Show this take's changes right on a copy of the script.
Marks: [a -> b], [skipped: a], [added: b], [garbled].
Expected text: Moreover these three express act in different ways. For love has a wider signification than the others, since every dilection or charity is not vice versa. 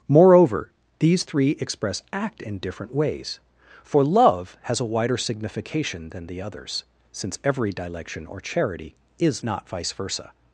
Moreover these three express act in different ways. For love has a wider signification than the others, since every dilection or charity is not vice versa.